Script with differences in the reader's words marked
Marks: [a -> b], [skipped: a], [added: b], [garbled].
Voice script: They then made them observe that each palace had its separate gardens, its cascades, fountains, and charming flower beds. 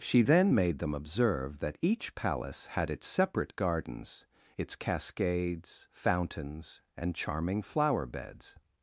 [They -> She] then made them observe that each palace had its separate gardens, its cascades, fountains, and charming flower beds.